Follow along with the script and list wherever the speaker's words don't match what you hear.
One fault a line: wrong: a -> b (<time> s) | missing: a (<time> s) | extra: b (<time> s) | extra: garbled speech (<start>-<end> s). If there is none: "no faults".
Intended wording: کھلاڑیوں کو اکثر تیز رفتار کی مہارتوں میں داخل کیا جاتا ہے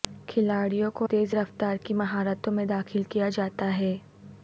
missing: اکثر (1.1 s)